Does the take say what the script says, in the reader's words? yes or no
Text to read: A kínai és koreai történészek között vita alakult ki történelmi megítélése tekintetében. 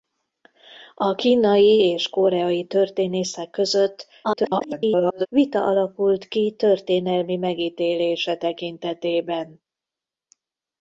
no